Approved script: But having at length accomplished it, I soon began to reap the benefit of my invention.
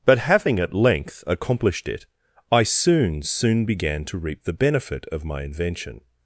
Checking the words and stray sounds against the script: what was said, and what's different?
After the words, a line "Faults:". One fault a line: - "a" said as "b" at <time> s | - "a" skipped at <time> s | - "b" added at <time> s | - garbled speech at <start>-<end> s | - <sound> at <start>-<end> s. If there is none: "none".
But having at length accomplished it, I soon soon began to reap the benefit of my invention.
Faults:
- "soon" added at 3.2 s